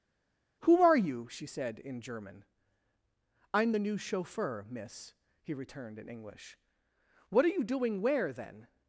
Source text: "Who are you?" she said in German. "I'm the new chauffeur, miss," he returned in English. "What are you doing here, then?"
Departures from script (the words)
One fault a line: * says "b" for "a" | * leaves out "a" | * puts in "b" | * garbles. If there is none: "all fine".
* says "where" for "here"